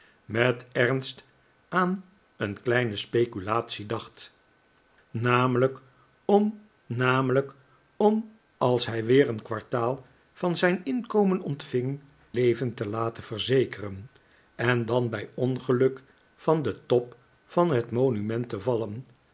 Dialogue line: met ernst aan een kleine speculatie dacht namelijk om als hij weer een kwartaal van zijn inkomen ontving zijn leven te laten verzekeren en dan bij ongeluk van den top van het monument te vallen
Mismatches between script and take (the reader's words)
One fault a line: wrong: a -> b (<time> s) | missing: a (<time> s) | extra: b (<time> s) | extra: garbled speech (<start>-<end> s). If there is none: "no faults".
extra: namelijk om (6.8 s)
missing: zijn (12.0 s)